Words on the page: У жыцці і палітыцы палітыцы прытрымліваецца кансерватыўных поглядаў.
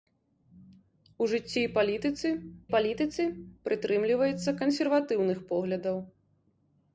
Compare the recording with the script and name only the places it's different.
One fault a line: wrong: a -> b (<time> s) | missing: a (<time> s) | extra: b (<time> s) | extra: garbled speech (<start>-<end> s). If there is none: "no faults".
no faults